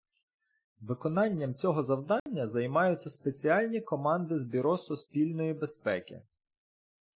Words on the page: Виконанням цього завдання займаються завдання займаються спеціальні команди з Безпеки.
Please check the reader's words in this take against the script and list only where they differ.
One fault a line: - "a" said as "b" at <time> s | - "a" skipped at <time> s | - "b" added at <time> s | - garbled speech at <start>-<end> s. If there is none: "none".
- "завдання займаються" skipped at 3.1 s
- "Бюро Суспільної" added at 4.5 s